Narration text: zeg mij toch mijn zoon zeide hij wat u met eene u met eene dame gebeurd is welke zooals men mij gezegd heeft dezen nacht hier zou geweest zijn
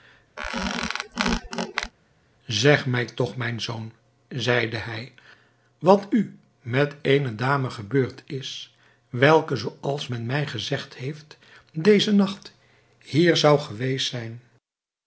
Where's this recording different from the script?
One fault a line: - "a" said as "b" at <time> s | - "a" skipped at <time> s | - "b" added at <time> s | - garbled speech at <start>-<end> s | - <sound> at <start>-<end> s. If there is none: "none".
- squeak at 0.4-1.9 s
- "u met eene" skipped at 7.3 s